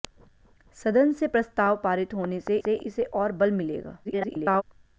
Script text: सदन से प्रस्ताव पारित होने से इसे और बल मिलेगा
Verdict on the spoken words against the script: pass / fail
fail